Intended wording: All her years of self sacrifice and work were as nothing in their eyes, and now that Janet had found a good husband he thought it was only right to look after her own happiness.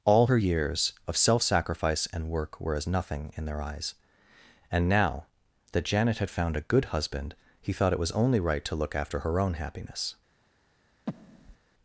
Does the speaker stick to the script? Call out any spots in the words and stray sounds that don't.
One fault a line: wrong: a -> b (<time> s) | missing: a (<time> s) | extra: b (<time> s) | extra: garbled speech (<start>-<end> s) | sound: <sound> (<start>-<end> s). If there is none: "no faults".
sound: breath (11.1-11.6 s)